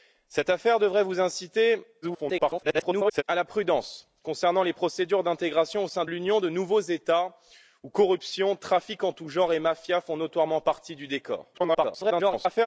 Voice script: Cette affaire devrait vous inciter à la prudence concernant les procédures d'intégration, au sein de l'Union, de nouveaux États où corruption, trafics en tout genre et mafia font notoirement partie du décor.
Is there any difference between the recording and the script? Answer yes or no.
yes